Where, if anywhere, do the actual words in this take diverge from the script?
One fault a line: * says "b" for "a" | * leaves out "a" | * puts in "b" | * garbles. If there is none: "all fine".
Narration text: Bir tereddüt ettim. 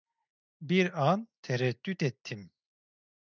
* puts in "an"